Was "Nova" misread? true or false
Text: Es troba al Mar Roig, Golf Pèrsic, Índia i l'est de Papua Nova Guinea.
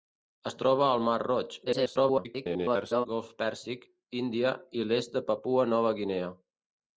false